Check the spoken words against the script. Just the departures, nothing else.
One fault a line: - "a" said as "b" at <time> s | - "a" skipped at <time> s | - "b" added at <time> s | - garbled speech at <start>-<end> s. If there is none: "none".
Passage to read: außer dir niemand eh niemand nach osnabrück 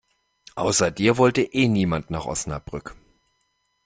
- "niemand" said as "wollte" at 1.2 s